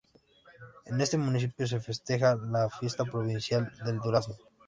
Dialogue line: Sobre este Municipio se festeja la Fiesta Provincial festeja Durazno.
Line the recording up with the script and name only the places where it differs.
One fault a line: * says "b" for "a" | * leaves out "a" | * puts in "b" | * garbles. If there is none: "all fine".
* says "En" for "Sobre"
* says "del" for "festeja"